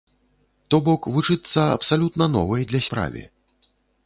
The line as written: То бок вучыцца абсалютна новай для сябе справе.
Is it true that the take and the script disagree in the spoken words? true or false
true